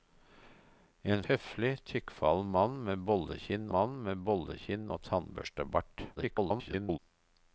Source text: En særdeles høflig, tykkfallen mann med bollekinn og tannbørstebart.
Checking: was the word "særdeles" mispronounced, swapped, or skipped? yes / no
yes